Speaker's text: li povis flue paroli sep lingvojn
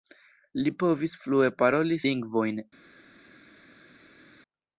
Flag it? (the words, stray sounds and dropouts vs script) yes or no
yes